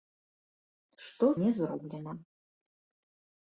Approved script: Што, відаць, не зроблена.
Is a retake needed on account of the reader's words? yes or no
yes